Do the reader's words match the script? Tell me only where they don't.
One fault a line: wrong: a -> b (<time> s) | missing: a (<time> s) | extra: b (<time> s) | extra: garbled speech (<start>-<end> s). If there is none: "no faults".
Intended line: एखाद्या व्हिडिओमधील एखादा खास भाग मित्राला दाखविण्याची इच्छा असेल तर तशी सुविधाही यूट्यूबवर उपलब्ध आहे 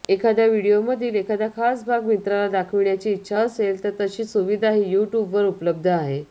no faults